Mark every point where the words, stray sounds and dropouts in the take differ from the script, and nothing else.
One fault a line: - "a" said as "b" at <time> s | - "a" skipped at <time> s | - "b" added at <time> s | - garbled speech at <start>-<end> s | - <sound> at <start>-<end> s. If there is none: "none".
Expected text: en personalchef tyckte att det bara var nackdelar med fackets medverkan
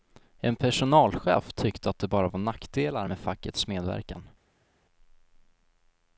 none